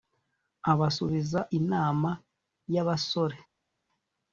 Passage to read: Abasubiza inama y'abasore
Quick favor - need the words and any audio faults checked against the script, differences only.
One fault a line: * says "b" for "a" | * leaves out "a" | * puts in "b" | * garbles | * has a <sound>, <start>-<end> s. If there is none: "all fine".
all fine